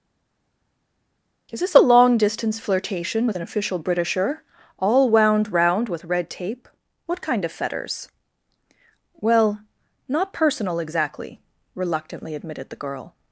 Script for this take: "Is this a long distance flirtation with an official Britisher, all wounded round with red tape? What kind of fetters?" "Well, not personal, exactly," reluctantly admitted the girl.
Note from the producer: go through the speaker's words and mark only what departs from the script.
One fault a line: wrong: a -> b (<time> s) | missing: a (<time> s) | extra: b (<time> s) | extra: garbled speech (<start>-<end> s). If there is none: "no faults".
wrong: wounded -> wound (5.1 s)